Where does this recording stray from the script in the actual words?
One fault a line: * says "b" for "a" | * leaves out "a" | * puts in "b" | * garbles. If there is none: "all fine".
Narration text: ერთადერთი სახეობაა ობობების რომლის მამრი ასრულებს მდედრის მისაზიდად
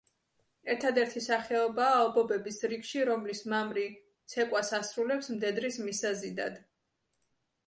* puts in "რიგში"
* puts in "ცეკვას"